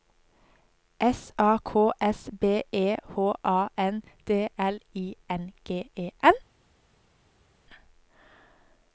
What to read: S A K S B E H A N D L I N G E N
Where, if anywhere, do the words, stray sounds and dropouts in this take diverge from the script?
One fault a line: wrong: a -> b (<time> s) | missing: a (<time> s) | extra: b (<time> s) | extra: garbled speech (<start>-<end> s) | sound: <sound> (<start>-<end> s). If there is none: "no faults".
no faults